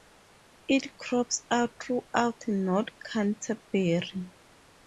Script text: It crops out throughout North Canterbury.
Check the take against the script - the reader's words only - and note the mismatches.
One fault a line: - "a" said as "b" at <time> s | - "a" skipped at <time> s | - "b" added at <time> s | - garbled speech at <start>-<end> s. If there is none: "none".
none